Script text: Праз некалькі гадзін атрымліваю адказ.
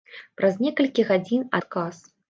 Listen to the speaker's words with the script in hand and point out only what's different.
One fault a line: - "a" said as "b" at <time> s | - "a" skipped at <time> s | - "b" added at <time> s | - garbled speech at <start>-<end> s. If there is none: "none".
- "атрымліваю" skipped at 1.5 s